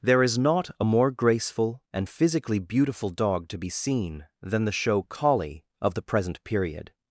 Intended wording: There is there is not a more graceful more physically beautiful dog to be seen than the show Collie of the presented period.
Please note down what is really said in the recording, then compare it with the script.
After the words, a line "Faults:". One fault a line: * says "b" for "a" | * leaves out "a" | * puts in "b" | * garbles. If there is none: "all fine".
There is not a more graceful and physically beautiful dog to be seen than the show Collie of the present period.
Faults:
* leaves out "there is"
* says "and" for "more"
* says "present" for "presented"